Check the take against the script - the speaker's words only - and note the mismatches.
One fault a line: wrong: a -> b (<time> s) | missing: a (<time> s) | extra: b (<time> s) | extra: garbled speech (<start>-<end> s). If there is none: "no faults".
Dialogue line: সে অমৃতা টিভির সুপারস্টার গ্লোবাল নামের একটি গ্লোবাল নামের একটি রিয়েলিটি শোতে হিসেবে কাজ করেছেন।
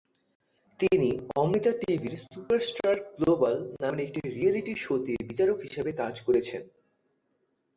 wrong: সে -> তিনি (0.8 s)
missing: গ্লোবাল নামের একটি (4.2 s)
extra: বিচারক (5.3 s)